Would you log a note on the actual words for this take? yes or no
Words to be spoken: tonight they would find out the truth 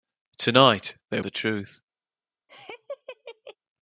yes